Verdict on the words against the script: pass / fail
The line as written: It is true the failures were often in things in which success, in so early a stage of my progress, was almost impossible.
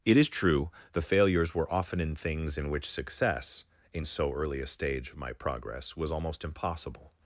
pass